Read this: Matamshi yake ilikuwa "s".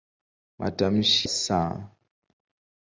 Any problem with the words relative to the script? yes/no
yes